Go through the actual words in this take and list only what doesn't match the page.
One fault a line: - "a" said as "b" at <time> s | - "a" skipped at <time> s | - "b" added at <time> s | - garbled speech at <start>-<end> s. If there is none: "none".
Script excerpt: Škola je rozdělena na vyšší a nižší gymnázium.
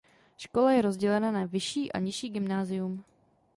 none